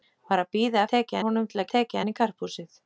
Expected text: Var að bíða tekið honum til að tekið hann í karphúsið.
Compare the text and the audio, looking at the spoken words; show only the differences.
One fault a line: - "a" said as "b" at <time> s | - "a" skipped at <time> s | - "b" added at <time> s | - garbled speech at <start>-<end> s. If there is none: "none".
none